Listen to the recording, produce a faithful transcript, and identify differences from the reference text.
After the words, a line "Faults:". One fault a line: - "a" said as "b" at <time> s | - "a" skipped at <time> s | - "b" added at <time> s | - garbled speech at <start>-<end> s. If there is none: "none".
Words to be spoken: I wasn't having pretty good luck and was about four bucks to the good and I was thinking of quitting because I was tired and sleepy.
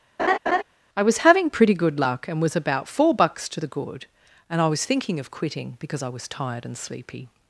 I was having pretty good luck and was about four bucks to the good and I was thinking of quitting because I was tired and sleepy.
Faults:
- "wasn't" said as "was" at 1.0 s